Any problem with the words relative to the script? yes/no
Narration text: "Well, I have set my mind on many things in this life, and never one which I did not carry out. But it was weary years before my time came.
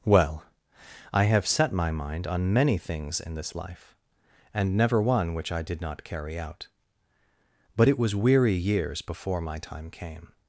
no